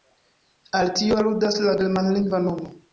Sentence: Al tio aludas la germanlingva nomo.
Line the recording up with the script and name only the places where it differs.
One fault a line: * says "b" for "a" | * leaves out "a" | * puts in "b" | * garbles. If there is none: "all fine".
all fine